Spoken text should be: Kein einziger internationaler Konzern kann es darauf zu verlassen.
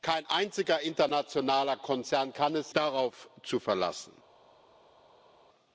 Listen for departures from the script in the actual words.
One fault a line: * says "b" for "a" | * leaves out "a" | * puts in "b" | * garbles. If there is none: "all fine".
all fine